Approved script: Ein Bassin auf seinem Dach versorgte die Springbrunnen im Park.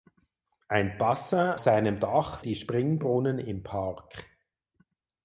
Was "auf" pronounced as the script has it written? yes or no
no